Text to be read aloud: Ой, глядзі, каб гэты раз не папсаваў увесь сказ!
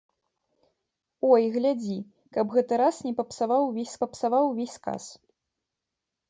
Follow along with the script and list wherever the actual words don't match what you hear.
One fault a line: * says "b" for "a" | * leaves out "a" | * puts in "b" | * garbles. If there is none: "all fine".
* puts in "папсаваў увесь"